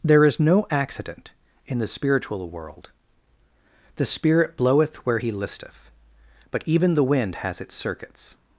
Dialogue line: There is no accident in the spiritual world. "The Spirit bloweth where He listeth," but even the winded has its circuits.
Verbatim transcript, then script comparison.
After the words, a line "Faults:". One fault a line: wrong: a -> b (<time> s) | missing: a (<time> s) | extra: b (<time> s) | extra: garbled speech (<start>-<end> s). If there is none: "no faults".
There is no accident in the spiritual world. "The Spirit bloweth where He listeth," but even the wind has its circuits.
Faults:
wrong: winded -> wind (7.0 s)